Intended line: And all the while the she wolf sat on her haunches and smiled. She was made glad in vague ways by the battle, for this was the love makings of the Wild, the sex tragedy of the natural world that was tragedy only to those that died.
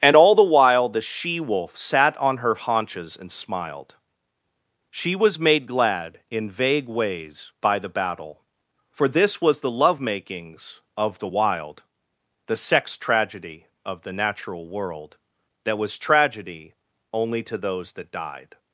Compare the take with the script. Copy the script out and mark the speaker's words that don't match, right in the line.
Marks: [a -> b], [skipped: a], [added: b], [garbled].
And all the while the she wolf sat on her haunches and smiled. She was made glad in vague ways by the battle, for this was the love makings of the Wild, the sex tragedy of the natural world that was tragedy only to those that died.